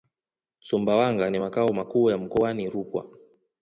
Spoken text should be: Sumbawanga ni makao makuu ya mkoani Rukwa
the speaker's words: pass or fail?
pass